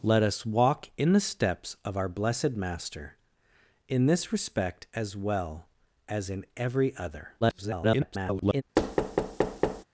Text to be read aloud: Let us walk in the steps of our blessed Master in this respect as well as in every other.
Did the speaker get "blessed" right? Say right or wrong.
right